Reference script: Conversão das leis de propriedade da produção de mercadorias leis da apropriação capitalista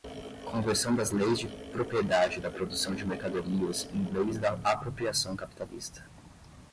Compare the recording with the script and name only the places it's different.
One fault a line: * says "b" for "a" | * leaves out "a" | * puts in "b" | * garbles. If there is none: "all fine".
* puts in "em"